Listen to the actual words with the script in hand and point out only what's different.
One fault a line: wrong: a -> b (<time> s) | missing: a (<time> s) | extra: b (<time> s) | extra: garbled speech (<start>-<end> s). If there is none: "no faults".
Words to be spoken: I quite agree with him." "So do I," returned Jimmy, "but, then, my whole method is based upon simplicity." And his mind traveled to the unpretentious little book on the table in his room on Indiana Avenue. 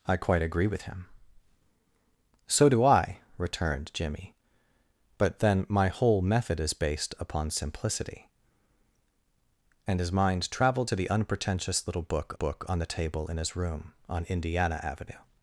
extra: book (12.3 s)